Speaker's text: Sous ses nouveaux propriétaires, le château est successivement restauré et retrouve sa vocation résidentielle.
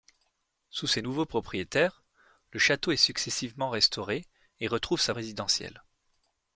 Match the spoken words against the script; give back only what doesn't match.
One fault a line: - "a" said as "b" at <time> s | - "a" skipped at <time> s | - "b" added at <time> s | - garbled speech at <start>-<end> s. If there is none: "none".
- "vocation" skipped at 5.1 s